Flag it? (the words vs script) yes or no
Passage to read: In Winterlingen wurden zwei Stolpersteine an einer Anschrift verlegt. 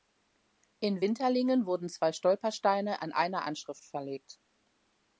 no